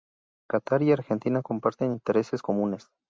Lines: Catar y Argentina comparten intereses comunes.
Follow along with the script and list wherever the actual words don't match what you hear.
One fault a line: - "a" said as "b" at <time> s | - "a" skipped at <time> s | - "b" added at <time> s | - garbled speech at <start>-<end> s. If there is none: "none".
none